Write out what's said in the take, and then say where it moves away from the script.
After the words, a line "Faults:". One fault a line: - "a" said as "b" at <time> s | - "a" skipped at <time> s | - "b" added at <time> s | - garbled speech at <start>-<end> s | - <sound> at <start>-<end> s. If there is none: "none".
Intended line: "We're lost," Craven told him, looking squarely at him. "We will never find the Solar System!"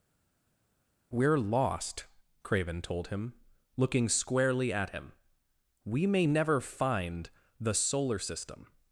"We're lost," Craven told him, looking squarely at him. "We may never find the Solar System!"
Faults:
- "will" said as "may" at 6.1 s